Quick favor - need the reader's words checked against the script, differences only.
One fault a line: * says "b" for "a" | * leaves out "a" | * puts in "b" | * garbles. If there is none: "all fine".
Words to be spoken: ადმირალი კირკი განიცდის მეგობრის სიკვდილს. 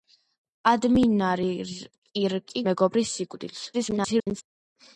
* leaves out "განიცდის"
* garbles